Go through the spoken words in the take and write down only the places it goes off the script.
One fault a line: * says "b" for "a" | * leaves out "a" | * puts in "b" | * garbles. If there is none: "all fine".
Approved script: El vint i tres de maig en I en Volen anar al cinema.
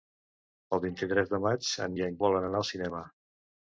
all fine